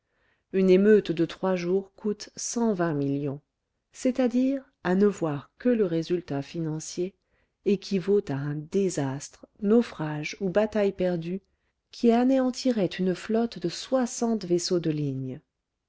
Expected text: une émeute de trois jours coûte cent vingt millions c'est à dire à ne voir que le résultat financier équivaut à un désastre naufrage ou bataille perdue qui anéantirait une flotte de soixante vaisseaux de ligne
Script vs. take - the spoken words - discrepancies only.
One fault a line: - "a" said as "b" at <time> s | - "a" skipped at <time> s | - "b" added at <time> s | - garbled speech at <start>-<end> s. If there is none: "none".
none